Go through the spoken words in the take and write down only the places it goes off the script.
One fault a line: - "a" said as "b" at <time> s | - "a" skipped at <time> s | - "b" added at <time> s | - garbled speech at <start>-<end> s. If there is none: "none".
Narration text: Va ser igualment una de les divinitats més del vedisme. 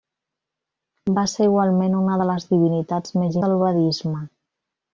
none